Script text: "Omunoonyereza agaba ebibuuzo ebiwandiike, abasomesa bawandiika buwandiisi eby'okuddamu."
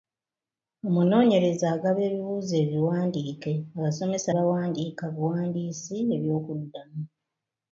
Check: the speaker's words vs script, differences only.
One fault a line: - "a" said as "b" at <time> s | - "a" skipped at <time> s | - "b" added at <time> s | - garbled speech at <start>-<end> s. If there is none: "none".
none